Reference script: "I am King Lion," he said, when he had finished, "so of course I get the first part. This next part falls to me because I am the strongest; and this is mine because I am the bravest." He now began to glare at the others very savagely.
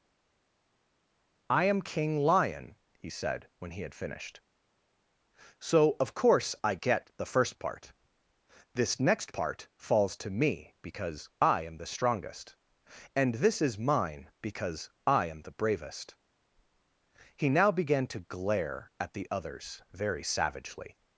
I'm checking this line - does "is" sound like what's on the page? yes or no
yes